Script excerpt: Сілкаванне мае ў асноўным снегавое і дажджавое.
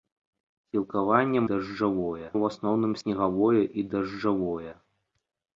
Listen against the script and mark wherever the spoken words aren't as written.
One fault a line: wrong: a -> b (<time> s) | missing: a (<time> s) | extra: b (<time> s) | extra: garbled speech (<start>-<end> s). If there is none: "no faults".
wrong: мае -> дажджавое (1.5 s)